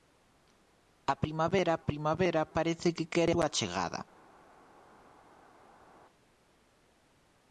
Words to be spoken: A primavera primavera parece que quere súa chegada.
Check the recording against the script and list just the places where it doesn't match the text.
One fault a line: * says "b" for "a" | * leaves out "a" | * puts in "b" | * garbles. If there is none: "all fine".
all fine